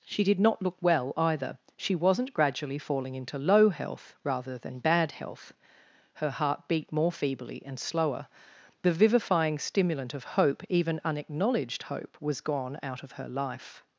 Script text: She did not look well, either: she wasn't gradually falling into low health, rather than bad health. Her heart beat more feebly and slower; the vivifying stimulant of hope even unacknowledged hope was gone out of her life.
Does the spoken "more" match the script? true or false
true